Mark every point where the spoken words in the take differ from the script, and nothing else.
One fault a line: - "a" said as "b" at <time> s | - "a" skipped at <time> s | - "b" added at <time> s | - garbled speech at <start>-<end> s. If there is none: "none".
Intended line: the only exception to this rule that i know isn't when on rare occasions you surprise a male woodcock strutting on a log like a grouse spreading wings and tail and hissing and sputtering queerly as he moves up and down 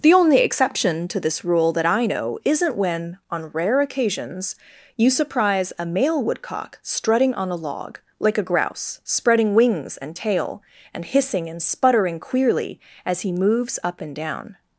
none